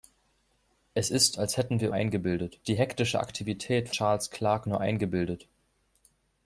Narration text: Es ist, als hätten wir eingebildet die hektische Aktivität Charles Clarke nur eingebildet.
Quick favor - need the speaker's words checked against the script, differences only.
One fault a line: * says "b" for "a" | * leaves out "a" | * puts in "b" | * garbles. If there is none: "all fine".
all fine